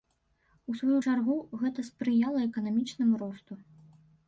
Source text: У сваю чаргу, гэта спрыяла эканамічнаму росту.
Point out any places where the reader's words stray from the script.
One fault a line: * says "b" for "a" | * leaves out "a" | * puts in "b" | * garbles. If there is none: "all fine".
all fine